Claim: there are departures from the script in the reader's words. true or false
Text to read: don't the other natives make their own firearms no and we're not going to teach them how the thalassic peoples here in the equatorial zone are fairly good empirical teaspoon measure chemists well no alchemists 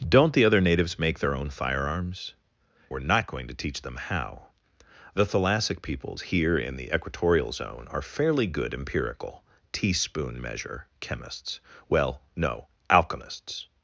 true